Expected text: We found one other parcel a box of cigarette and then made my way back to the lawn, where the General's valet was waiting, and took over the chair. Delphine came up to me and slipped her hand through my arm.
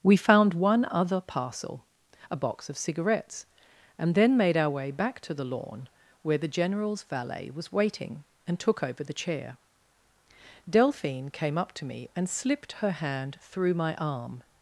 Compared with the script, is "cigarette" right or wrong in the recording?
wrong